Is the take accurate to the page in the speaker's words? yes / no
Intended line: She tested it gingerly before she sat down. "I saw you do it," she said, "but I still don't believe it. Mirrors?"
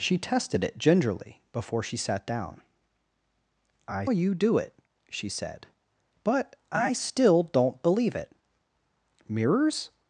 no